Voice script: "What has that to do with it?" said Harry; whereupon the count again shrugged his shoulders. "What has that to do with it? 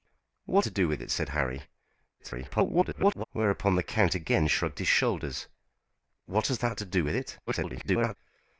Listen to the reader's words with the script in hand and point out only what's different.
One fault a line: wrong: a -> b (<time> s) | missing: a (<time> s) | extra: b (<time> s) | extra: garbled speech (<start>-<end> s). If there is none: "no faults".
missing: has that (0.7 s)
extra: garbled speech (2.2-3.2 s)
extra: garbled speech (7.5-8.2 s)